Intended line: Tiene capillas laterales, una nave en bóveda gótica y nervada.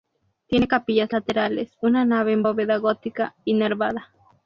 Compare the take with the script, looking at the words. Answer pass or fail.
pass